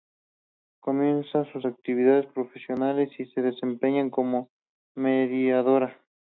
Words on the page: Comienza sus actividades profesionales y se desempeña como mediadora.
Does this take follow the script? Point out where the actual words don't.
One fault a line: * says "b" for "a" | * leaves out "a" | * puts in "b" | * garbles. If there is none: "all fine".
all fine